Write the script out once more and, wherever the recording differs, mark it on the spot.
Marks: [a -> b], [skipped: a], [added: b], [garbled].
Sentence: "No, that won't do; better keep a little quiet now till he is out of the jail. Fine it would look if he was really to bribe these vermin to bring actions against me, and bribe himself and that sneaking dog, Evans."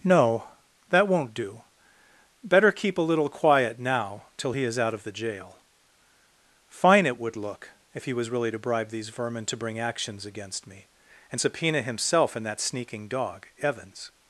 "No, that won't do; better keep a little quiet now till he is out of the jail. Fine it would look if he was really to bribe these vermin to bring actions against me, and [bribe -> subpoena] himself and that sneaking dog, Evans."